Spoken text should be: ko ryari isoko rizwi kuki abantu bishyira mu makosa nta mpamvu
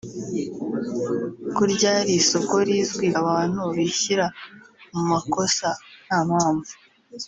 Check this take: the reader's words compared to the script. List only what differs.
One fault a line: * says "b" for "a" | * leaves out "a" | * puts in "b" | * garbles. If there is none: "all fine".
* leaves out "kuki"